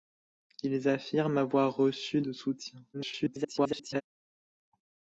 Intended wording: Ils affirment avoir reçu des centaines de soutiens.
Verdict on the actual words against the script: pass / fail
fail